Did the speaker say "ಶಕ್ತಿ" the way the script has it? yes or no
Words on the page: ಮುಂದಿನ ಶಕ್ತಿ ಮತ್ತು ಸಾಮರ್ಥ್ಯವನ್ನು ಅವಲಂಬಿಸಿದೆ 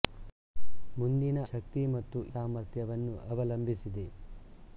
yes